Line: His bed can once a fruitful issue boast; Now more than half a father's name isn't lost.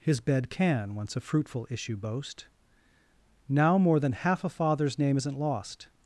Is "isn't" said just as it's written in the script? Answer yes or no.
yes